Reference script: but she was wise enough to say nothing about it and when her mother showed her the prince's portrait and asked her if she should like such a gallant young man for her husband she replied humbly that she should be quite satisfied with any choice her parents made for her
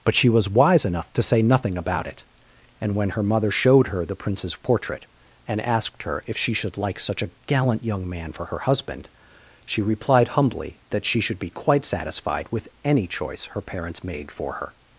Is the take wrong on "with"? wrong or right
right